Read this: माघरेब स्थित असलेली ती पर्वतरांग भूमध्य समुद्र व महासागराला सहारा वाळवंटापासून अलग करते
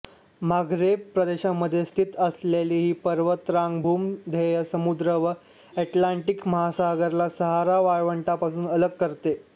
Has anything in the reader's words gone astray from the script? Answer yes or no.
yes